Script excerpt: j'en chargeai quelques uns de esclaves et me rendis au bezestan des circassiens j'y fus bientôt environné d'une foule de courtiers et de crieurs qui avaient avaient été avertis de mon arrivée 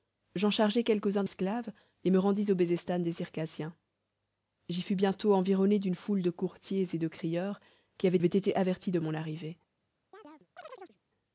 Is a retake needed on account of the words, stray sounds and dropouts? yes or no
yes